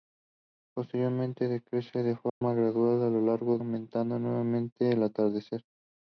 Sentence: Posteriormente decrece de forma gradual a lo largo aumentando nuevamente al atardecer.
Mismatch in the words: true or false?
false